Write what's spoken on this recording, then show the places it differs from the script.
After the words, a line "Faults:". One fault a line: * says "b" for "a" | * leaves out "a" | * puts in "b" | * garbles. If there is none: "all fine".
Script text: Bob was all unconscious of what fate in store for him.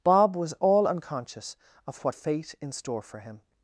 Bob was all unconscious of what fate in store for him.
Faults:
all fine